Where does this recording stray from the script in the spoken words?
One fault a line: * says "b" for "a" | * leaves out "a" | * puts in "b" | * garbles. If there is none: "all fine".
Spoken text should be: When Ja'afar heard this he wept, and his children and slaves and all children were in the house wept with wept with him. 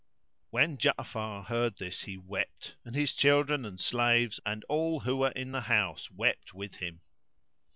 * says "who" for "children"
* leaves out "wept with"